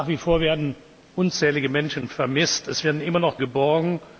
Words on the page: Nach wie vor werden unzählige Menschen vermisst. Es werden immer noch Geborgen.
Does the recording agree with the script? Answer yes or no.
yes